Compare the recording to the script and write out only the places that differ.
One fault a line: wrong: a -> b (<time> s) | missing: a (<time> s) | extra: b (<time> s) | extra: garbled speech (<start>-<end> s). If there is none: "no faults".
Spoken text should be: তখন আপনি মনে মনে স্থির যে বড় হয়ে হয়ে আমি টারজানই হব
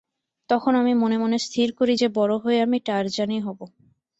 wrong: আপনি -> আমি (0.8 s)
extra: করি (1.8 s)
missing: হয়ে (2.6 s)